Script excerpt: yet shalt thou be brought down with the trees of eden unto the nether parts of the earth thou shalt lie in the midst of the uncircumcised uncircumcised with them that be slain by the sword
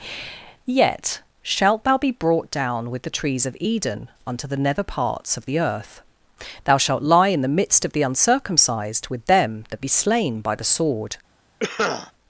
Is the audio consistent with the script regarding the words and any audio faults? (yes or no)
no